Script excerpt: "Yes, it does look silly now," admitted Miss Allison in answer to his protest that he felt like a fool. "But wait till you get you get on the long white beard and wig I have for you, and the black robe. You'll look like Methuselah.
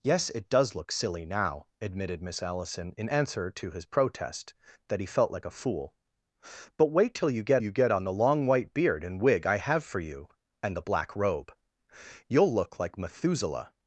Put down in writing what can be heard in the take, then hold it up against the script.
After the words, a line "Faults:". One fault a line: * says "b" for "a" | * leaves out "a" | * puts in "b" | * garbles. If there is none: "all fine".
"Yes, it does look silly now," admitted Miss Allison in answer to his protest that he felt like a fool. "But wait till you get you get on the long white beard and wig I have for you, and the black robe. You'll look like Methuselah.
Faults:
all fine